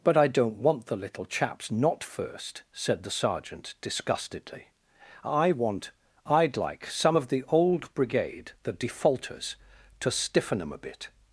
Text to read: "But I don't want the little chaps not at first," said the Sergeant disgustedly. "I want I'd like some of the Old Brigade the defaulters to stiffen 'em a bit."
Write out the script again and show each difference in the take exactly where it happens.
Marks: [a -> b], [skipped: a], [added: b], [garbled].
"But I don't want the little chaps not [skipped: at] first," said the Sergeant disgustedly. "I want I'd like some of the Old Brigade the defaulters to stiffen 'em a bit."